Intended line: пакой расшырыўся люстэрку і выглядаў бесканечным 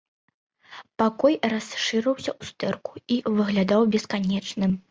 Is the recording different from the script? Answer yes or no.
no